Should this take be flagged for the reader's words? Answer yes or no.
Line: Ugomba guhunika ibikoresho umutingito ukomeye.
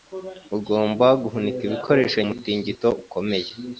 no